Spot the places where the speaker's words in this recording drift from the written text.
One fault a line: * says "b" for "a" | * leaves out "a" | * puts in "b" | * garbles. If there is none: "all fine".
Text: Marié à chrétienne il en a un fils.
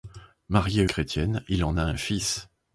all fine